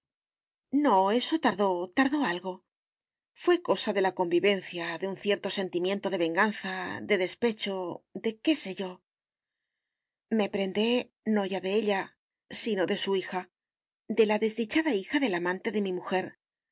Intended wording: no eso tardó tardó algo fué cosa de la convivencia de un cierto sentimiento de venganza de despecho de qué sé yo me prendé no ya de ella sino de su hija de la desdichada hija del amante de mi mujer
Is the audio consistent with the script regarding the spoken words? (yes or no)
yes